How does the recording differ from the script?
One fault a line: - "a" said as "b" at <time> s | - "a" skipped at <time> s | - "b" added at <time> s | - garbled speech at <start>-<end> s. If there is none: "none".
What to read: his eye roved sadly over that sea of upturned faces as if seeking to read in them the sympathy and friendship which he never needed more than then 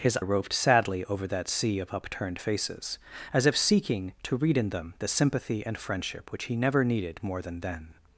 - "eye" skipped at 0.2 s